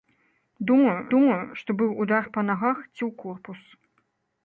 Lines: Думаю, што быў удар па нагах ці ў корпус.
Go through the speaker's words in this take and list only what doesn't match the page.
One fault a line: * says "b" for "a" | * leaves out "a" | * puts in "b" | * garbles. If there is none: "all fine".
* puts in "думаю"